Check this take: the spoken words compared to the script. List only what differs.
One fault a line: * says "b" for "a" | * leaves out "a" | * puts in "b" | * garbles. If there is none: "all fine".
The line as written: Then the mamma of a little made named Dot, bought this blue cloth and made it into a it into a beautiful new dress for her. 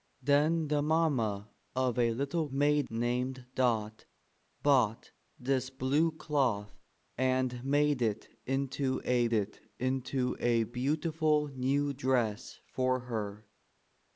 all fine